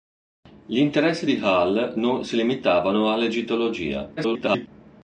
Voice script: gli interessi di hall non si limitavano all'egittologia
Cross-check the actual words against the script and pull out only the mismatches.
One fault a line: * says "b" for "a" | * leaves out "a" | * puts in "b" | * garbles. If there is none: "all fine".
* garbles